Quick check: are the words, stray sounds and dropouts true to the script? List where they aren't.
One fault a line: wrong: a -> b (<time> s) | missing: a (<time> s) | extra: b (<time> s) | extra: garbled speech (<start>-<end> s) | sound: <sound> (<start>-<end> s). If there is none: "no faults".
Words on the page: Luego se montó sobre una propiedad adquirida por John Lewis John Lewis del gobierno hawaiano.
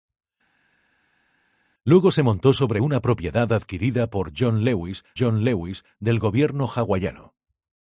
no faults